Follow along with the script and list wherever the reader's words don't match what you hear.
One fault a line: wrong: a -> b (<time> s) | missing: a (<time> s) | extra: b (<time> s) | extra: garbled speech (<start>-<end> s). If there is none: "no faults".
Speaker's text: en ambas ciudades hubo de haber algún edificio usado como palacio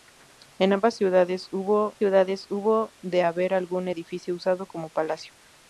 extra: ciudades hubo (2.0 s)